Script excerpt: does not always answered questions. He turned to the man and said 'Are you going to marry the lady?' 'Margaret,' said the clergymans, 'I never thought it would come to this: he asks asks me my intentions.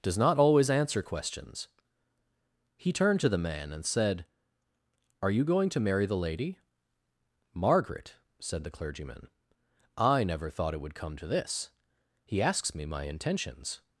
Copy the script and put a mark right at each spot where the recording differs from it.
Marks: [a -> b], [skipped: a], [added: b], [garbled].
does not always [answered -> answer] questions. He turned to the man and said 'Are you going to marry the lady?' 'Margaret,' said the [clergymans, -> clergyman] 'I never thought it would come to this: he asks [skipped: asks] me my intentions.